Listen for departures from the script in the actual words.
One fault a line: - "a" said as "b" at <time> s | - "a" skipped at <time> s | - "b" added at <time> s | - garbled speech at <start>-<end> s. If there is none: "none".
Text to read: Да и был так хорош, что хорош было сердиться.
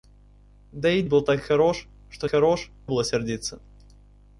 none